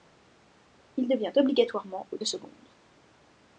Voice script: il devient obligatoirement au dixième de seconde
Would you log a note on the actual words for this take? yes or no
yes